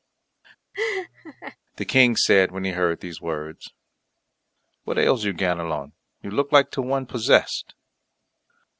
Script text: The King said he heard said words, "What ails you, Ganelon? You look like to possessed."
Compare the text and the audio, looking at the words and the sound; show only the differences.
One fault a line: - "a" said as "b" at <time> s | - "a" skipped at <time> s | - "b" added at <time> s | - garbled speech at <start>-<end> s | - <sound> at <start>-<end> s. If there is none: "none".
- laugh at 0.7-1.6 s
- "when" added at 2.5 s
- "said" said as "these" at 3.0 s
- "one" added at 6.8 s